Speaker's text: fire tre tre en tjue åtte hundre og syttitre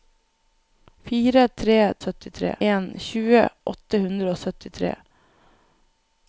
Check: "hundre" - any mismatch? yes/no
no